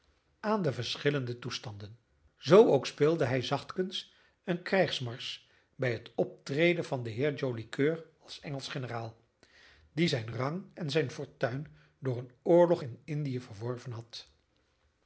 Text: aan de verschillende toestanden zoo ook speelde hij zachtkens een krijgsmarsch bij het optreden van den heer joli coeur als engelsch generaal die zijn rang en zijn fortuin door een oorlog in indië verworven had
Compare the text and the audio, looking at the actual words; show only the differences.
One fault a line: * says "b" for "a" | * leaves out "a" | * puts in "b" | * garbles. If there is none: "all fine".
all fine